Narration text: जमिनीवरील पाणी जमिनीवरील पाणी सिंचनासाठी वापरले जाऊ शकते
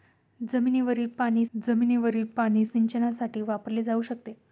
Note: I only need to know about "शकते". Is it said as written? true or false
true